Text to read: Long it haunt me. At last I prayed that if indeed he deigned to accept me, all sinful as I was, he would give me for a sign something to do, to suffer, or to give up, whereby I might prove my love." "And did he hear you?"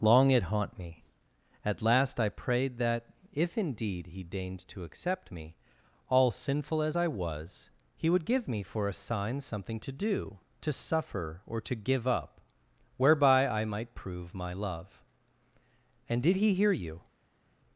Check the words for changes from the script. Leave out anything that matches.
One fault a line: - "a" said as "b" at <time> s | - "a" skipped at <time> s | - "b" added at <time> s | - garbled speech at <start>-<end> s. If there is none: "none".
none